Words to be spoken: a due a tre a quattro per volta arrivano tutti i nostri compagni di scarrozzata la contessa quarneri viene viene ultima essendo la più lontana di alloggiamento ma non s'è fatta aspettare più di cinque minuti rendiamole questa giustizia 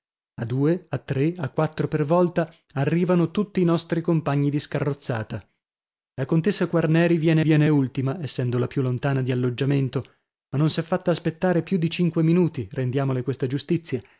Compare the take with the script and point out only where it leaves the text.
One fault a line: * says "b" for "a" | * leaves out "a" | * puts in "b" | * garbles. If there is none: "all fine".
all fine